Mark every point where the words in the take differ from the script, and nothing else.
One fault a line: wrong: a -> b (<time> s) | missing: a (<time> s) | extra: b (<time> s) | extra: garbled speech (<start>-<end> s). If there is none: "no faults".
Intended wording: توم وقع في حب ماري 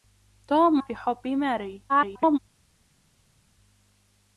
missing: وقع (0.8 s)
extra: garbled speech (1.9-2.4 s)